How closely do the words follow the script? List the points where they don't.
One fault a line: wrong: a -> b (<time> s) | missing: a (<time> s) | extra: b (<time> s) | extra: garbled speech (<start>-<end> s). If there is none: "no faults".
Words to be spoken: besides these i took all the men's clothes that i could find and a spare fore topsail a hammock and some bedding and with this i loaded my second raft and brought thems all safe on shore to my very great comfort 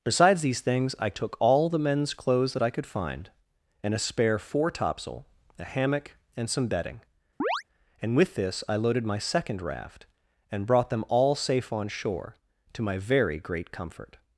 extra: things (0.6 s)
wrong: thems -> them (10.9 s)